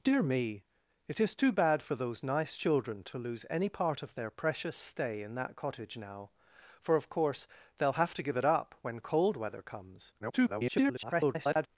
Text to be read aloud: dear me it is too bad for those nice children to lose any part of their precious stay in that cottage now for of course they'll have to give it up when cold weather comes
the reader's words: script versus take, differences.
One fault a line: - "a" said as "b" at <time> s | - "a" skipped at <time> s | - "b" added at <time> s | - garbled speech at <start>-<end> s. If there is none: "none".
- garbled speech at 10.2-11.7 s